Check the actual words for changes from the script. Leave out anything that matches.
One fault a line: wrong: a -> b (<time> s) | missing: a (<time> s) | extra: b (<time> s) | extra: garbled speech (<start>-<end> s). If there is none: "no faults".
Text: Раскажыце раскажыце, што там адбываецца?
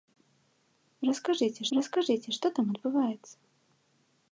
no faults